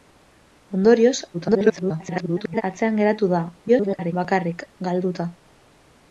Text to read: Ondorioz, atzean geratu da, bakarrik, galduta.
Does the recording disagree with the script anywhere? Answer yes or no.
yes